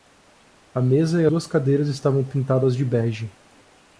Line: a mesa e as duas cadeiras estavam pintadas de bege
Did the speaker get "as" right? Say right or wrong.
wrong